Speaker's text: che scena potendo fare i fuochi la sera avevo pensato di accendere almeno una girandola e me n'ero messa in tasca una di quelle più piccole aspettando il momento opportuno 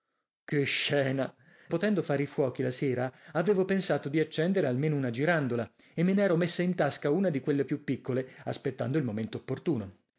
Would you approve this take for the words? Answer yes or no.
yes